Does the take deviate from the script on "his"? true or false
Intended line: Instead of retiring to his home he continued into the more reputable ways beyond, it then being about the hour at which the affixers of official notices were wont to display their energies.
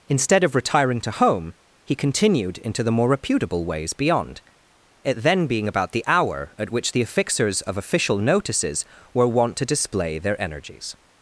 true